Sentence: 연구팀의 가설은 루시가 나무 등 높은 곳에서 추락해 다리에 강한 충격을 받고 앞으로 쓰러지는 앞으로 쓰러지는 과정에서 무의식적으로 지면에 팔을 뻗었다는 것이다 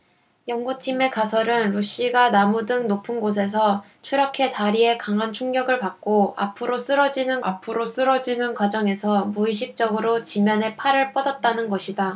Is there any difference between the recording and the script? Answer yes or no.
no